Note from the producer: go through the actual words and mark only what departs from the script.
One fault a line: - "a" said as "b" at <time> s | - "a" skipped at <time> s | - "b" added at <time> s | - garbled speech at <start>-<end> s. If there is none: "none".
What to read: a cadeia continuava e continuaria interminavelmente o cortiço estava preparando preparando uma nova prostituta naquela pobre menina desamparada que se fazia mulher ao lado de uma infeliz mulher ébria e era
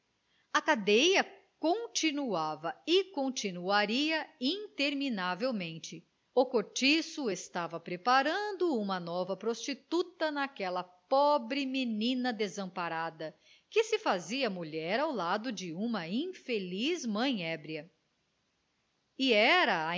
- "preparando" skipped at 8.8 s
- "mulher" said as "mãe" at 17.1 s